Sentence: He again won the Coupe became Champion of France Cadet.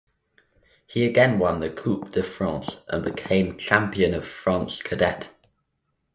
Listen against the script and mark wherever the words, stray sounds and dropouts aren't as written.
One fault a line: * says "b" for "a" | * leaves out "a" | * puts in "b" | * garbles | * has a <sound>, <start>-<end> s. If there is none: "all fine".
* puts in "de France and"